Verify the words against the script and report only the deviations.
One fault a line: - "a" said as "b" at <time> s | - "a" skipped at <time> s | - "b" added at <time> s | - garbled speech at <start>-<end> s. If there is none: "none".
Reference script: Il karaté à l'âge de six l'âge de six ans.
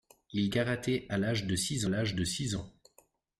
none